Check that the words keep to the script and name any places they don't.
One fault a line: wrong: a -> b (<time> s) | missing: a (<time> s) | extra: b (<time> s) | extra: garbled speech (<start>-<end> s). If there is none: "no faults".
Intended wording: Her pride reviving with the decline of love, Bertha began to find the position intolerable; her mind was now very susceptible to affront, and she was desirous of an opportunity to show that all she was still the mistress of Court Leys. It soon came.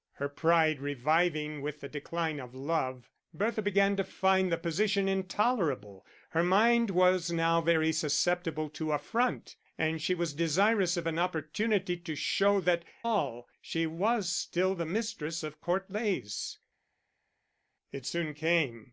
no faults